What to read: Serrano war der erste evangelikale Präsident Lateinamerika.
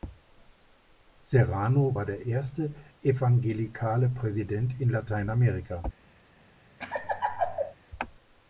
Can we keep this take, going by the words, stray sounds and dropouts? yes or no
no